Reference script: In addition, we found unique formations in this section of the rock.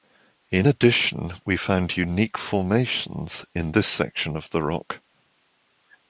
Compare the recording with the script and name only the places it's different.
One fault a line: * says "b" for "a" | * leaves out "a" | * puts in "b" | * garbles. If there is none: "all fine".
all fine